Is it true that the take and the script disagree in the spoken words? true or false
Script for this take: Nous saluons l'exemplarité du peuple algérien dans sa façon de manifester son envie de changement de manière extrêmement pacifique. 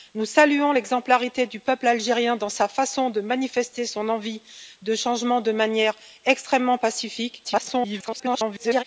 true